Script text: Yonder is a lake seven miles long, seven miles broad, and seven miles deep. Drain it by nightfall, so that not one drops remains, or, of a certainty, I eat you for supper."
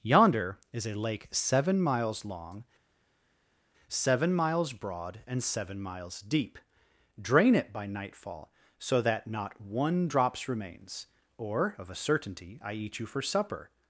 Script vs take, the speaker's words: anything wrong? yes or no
no